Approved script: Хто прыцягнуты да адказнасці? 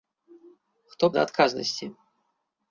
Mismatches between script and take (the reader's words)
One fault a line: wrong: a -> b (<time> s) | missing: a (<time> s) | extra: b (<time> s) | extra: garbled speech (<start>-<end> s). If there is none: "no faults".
missing: прыцягнуты (1.1 s)